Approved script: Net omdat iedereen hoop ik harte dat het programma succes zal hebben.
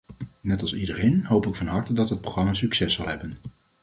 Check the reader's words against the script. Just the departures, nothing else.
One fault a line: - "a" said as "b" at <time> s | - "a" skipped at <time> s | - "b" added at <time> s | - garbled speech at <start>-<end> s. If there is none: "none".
- "omdat" said as "als" at 0.6 s
- "van" added at 1.6 s